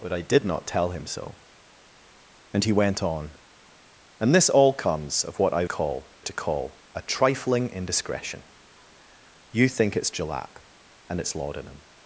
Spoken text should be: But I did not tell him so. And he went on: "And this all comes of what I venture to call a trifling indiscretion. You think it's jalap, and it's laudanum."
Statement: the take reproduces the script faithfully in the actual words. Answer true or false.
false